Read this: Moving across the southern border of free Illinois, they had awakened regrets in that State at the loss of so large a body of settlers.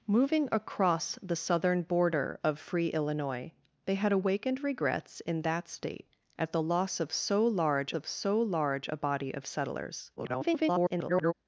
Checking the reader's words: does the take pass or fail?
fail